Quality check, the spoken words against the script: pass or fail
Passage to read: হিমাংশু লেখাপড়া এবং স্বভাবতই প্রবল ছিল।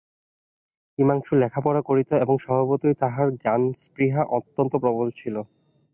fail